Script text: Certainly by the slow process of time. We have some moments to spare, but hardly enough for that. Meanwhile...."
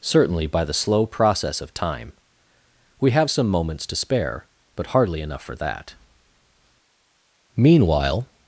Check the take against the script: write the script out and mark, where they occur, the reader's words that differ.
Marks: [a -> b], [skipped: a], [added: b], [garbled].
Certainly by the slow process of time. We have some moments to spare, but hardly enough for that. Meanwhile...."